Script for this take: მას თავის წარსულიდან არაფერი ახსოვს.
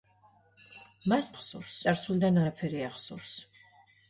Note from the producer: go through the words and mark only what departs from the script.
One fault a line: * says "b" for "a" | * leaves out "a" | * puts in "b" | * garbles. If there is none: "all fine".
* says "ახსოვს" for "თავის"